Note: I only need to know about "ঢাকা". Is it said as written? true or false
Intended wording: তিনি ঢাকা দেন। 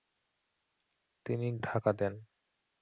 true